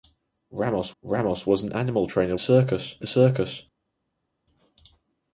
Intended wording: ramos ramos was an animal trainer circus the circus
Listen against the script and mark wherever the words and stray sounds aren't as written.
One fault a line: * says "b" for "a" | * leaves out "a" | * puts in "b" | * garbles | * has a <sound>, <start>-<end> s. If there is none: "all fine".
all fine